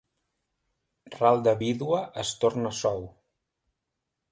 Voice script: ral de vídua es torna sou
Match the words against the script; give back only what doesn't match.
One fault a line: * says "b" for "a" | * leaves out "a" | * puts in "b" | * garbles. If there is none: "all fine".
all fine